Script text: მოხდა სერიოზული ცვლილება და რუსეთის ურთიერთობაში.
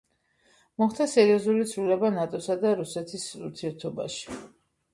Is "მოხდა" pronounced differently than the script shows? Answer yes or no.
no